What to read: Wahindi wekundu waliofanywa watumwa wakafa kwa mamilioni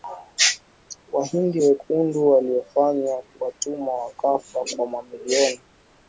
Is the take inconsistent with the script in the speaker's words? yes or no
no